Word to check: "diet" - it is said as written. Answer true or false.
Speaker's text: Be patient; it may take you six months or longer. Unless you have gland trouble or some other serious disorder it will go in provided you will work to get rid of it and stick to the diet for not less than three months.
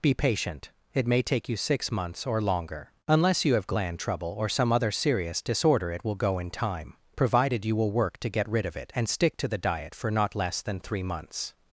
true